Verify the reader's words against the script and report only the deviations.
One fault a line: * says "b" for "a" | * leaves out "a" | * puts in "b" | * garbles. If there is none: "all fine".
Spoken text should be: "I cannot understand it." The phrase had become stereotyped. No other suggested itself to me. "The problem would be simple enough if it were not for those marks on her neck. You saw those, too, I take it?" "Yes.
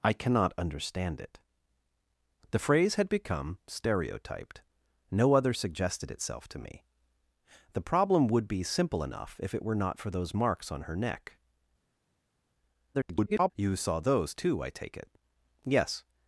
* garbles